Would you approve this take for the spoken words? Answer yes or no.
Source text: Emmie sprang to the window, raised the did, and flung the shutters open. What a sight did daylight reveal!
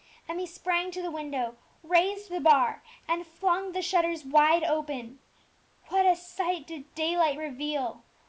no